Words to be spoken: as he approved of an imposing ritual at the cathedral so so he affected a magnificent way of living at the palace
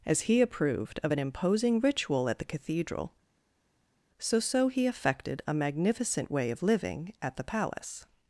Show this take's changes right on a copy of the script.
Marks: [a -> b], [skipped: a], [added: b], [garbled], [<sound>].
as he approved of an imposing ritual at the cathedral so so he affected a magnificent way of living at the palace